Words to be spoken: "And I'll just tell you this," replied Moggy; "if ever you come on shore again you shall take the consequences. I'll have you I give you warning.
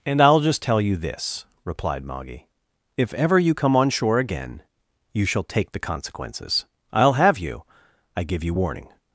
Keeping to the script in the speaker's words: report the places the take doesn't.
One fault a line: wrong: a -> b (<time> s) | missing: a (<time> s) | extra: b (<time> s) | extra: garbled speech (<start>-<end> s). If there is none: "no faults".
no faults